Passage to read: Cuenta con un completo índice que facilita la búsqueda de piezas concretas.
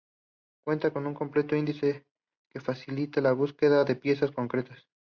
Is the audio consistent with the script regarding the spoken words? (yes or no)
yes